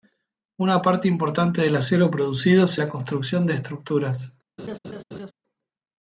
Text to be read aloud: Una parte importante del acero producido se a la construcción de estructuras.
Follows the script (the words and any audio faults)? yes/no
no